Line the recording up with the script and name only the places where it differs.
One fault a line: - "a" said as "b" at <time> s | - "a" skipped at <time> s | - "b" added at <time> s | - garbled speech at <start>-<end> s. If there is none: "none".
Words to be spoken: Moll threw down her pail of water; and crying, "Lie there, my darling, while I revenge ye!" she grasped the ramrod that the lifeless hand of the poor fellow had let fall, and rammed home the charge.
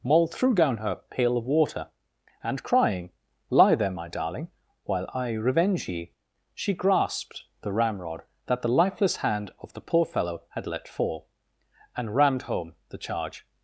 none